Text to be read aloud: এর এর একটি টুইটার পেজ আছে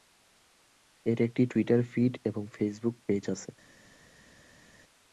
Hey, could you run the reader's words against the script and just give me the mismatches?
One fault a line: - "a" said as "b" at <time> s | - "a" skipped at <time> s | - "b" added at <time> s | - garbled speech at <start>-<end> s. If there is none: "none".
- "এর" skipped at 1.2 s
- "ফিড এবং ফেসবুক" added at 1.9 s